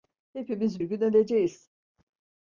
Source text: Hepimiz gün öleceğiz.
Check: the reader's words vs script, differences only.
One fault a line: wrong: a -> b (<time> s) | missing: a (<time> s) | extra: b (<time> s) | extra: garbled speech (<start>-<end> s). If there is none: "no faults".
no faults